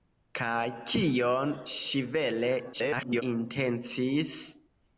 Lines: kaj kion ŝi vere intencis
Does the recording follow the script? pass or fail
fail